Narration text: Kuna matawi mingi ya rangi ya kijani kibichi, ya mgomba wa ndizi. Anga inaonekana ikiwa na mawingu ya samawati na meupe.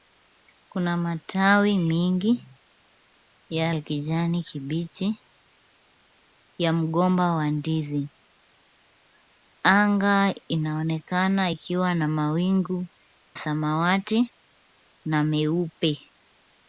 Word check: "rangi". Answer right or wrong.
wrong